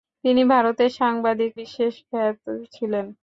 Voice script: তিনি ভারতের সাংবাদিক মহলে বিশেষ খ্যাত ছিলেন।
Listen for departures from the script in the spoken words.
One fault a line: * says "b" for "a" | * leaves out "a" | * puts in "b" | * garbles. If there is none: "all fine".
* leaves out "মহলে"